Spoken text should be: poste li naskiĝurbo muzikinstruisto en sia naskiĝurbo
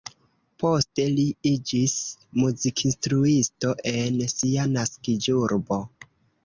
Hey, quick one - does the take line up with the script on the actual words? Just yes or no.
no